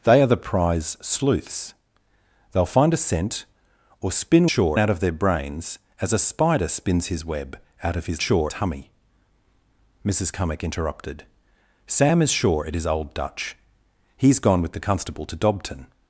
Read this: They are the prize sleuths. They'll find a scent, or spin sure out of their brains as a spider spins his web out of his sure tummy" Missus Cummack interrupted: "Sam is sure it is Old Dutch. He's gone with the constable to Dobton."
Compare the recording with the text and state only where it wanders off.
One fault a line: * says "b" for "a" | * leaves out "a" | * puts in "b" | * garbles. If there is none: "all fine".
all fine